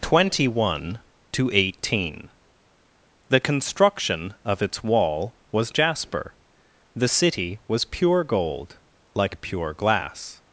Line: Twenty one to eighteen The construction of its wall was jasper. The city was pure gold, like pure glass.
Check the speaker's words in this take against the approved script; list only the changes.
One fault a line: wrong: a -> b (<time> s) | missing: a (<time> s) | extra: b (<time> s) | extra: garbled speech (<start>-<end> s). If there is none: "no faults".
no faults